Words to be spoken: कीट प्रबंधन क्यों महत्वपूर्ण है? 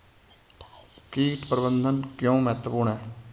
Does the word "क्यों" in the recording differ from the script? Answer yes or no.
no